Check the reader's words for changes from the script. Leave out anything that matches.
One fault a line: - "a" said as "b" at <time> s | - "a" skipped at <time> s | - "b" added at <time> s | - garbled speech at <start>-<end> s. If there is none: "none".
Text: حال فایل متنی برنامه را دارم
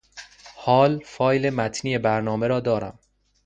none